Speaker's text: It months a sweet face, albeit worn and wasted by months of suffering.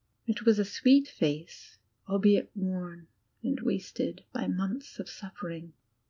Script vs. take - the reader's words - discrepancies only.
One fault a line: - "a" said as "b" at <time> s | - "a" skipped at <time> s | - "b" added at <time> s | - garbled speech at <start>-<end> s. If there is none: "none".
- "months" said as "was" at 0.5 s